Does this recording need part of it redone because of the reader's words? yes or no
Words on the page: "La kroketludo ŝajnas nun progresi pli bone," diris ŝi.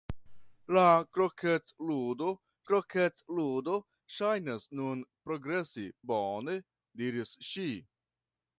yes